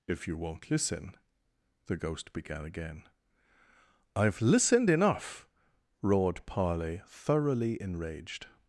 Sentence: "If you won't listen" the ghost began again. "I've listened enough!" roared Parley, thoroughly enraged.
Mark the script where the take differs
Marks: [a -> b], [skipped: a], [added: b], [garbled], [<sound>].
"If you won't listen" the ghost began again. "I've listened enough!" roared Parley, thoroughly enraged.